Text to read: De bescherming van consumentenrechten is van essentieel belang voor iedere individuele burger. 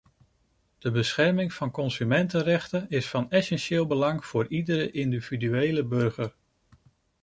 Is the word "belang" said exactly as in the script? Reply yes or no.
yes